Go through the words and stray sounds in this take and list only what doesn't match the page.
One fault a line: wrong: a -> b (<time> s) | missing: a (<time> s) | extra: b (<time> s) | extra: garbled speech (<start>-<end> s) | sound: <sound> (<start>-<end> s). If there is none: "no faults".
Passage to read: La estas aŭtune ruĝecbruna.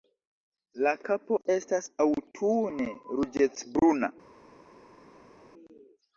extra: kapo (1.1 s)